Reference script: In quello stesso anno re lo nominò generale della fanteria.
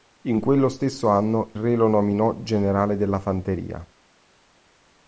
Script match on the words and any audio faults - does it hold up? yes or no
yes